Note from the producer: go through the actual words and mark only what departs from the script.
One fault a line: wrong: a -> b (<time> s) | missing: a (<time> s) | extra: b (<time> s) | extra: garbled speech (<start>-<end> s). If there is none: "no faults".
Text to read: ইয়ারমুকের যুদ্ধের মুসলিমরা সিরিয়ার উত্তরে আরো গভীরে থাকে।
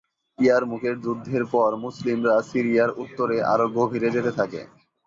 extra: পর (1.5 s)
extra: যেতে (4.2 s)